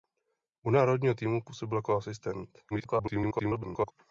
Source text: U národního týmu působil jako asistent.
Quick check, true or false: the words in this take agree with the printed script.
false